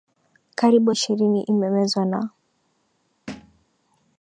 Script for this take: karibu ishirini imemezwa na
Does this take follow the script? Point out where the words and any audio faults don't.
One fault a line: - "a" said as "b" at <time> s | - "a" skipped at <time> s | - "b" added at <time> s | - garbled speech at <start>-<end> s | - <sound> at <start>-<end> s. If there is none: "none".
- thud at 3.3-3.7 s